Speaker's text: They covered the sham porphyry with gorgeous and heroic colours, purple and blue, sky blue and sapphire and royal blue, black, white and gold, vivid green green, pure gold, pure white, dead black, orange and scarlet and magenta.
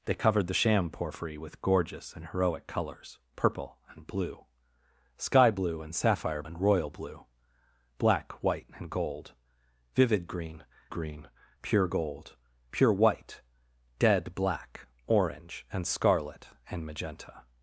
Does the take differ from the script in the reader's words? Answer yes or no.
no